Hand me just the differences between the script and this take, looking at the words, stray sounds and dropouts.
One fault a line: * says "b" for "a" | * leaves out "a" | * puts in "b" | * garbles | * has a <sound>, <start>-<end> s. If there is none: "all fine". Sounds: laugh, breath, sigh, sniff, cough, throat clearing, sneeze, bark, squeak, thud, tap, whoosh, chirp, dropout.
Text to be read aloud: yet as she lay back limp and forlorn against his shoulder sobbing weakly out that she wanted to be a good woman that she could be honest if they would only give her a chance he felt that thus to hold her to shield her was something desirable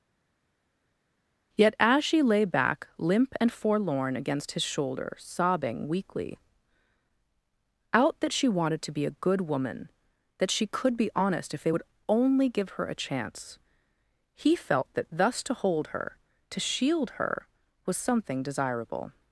all fine